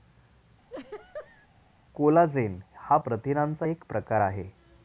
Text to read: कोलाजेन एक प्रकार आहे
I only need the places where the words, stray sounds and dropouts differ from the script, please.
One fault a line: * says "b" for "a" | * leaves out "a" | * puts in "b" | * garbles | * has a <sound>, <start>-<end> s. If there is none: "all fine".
* has a laugh, 0.7-1.5 s
* puts in "हा प्रथिनांचा"